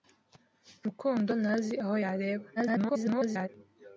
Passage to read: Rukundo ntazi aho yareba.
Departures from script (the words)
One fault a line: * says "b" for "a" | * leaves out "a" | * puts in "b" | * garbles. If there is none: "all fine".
* garbles